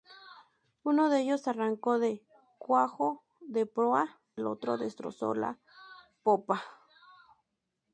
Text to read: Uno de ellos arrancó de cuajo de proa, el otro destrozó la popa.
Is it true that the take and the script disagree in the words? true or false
false